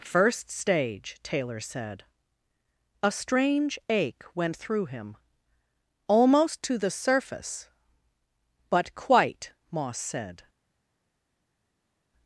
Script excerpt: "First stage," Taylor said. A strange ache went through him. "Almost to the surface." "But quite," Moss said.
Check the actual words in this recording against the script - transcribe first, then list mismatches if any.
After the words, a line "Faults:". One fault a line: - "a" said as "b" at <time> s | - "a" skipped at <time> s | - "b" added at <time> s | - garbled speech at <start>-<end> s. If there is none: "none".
"First stage," Taylor said. A strange ache went through him. "Almost to the surface." "But quite," Moss said.
Faults:
none